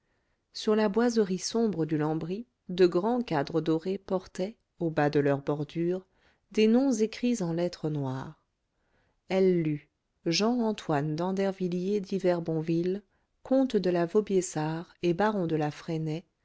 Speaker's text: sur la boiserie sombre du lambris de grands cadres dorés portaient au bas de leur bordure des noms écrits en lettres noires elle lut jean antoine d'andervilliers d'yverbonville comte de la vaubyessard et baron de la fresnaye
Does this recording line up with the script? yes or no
yes